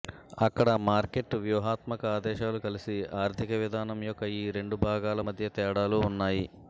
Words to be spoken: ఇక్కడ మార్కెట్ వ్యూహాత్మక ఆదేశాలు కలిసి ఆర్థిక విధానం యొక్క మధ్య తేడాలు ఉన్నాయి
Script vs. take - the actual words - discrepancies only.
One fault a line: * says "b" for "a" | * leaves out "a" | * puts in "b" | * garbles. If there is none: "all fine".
* says "అక్కడ" for "ఇక్కడ"
* puts in "ఈ రెండు భాగాల"